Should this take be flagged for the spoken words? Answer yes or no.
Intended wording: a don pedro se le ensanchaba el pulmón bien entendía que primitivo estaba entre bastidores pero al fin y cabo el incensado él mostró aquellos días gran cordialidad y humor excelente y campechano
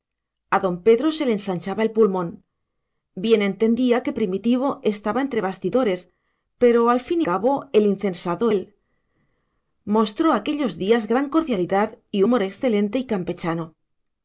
no